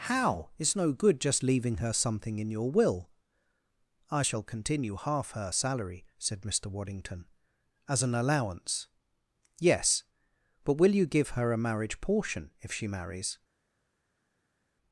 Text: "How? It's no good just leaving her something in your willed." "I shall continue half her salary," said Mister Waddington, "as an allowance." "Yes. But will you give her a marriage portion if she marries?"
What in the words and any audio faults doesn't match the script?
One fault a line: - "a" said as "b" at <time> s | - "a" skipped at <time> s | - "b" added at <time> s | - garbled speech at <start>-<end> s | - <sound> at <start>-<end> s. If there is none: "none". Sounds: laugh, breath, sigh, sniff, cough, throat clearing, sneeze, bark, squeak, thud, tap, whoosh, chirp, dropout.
- "willed" said as "will" at 2.7 s